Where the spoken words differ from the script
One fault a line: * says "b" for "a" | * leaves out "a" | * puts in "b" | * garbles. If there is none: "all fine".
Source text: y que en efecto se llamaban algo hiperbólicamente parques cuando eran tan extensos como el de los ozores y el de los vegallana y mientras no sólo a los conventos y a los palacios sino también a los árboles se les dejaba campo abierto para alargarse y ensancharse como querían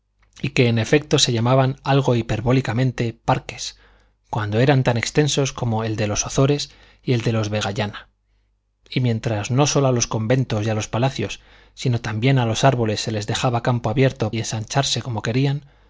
* leaves out "para alargarse"